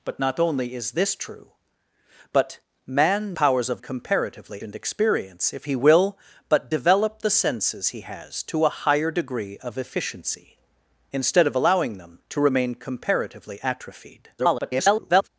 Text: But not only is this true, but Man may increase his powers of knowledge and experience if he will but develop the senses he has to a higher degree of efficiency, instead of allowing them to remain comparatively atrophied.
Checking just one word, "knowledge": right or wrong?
wrong